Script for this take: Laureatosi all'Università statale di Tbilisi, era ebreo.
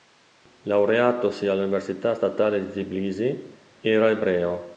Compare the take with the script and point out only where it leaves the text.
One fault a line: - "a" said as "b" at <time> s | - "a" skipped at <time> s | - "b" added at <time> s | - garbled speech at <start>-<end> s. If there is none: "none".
none